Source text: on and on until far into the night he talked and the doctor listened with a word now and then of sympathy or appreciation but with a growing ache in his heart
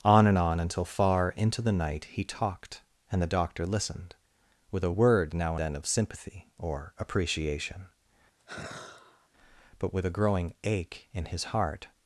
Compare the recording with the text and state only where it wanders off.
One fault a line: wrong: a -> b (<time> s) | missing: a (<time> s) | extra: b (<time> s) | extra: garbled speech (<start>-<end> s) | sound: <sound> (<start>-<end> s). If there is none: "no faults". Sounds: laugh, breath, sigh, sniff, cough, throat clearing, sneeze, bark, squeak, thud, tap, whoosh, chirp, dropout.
missing: and (5.6 s)
sound: sigh (8.4-9.3 s)